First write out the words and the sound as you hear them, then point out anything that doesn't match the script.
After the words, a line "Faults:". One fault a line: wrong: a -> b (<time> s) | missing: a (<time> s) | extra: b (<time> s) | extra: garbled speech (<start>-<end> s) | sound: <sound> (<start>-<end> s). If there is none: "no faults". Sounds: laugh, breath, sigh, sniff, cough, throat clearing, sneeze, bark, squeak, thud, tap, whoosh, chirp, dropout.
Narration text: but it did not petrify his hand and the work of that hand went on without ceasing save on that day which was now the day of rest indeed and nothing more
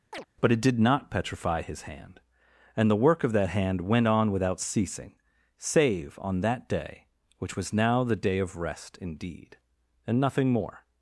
but it did not petrify his hand and the work of that hand went on without ceasing save on that day which was now the day of rest indeed and nothing more
Faults:
sound: chirp (0.1-0.3 s)